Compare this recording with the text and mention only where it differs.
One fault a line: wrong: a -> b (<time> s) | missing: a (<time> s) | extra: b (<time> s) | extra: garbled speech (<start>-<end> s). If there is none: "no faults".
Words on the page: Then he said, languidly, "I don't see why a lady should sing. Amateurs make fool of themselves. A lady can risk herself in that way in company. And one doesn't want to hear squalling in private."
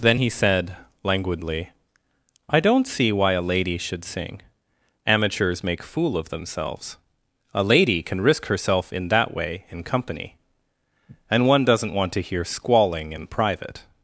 no faults